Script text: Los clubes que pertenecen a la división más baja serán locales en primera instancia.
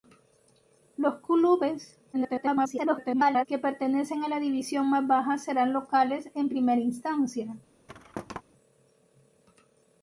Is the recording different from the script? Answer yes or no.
yes